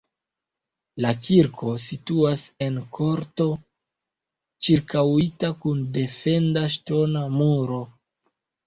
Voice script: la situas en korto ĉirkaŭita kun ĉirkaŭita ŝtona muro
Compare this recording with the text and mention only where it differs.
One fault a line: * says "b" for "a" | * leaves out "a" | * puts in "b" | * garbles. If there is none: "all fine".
* puts in "kirko"
* says "defenda" for "ĉirkaŭita"